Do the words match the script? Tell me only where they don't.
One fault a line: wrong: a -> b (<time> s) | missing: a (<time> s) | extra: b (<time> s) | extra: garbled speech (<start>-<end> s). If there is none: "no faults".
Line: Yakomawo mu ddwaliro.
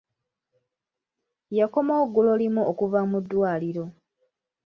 extra: ggulo limu okuva (2.1 s)